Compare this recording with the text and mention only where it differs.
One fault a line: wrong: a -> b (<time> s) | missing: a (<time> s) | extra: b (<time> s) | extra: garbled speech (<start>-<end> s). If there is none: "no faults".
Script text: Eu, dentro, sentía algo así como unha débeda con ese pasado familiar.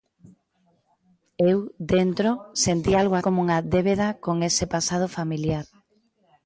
missing: así (3.1 s)